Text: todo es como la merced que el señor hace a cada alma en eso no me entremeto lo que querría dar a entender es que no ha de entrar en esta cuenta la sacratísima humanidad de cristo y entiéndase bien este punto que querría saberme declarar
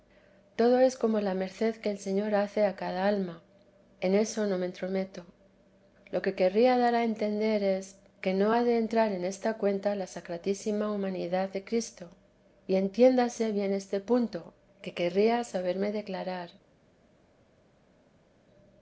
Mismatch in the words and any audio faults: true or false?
false